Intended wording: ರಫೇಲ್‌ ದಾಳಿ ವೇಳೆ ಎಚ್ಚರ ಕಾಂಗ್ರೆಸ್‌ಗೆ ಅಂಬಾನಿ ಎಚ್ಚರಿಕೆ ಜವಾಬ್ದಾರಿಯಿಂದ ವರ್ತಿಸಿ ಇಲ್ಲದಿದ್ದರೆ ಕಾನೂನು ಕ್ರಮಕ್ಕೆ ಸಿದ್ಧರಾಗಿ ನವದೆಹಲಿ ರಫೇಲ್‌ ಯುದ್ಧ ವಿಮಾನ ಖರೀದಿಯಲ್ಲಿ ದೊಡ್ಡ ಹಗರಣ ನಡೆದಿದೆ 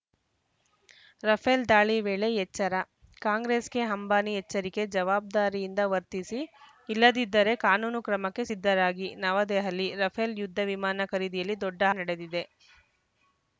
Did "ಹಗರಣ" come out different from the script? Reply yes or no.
yes